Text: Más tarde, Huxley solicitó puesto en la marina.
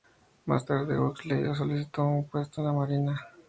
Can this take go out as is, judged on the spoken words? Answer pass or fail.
fail